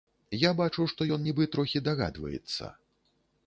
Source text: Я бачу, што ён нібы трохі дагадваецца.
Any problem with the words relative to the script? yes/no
no